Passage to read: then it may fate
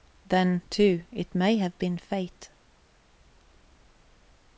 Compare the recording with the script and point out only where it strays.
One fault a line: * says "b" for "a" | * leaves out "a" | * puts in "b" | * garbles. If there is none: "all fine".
* puts in "too"
* puts in "have been"